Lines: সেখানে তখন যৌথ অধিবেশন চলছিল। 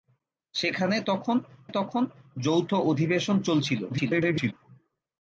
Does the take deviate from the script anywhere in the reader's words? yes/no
yes